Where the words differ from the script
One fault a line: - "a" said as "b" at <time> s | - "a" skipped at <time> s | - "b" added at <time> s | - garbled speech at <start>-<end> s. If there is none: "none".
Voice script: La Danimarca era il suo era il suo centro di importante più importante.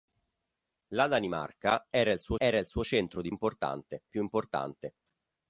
none